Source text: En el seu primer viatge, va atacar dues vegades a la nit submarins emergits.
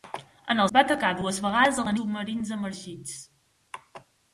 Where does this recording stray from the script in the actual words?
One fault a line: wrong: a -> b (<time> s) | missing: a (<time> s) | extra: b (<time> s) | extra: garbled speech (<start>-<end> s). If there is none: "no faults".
missing: seu primer viatge (0.7 s)
missing: nit (1.9 s)